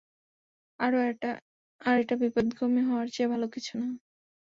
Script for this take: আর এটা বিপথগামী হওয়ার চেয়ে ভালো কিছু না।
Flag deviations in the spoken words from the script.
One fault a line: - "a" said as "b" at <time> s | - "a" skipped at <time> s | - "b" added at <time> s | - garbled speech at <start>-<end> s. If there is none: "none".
none